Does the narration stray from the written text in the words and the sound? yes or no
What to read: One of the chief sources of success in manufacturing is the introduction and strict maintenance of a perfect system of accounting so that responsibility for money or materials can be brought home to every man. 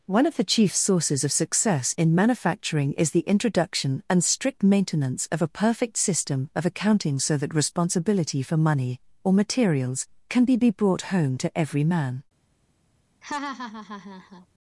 yes